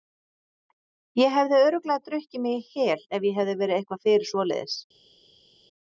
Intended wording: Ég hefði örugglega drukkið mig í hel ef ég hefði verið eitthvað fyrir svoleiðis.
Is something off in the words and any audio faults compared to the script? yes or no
no